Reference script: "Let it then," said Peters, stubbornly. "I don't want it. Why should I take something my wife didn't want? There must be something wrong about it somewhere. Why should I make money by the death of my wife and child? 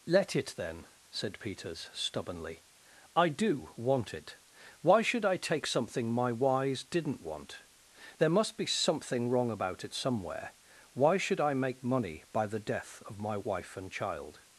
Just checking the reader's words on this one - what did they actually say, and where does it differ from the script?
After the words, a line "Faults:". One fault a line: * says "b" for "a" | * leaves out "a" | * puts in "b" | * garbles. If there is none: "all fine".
"Let it then," said Peters, stubbornly. "I do want it. Why should I take something my wise didn't want? There must be something wrong about it somewhere. Why should I make money by the death of my wife and child?
Faults:
* says "do" for "don't"
* says "wise" for "wife"